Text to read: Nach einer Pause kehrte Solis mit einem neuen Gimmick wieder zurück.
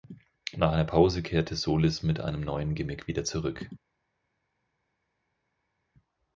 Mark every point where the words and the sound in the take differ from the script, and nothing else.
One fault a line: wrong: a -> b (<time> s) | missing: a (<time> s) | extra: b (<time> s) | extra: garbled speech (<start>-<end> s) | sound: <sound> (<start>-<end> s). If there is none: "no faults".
no faults